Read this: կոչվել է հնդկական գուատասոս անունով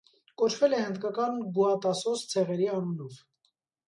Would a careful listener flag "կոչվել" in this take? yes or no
no